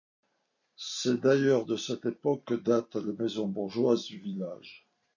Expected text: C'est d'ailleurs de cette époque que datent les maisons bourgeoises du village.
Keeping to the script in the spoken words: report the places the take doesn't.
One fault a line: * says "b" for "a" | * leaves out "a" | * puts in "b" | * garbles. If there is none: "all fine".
all fine